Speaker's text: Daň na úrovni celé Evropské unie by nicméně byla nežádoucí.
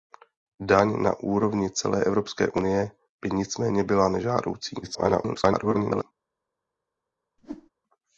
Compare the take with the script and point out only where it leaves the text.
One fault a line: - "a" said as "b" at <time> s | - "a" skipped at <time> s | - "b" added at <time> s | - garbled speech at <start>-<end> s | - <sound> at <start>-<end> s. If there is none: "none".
- garbled speech at 4.8-6.0 s
- whoosh at 7.4-7.7 s